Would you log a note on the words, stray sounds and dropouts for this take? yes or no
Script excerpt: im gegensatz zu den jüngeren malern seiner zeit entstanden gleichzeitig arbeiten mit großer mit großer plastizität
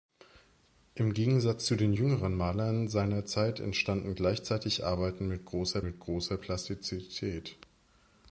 no